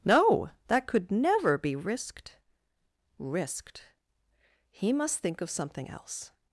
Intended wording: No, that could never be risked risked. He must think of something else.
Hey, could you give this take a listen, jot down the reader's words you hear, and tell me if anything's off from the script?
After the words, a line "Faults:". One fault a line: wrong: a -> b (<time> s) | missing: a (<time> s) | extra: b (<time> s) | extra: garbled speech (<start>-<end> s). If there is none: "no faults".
No, that could never be risked risked. He must think of something else.
Faults:
no faults